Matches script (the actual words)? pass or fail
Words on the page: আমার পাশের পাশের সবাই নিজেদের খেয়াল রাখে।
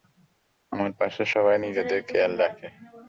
fail